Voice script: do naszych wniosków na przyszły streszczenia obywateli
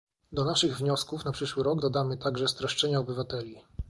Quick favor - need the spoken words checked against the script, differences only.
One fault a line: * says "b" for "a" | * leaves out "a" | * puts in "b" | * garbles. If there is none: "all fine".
* puts in "rok dodamy także"